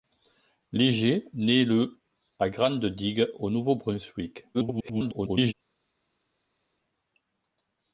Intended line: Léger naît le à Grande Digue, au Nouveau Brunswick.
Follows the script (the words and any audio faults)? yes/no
no